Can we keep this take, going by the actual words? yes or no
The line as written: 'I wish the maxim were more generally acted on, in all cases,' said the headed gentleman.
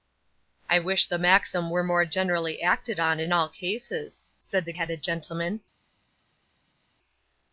yes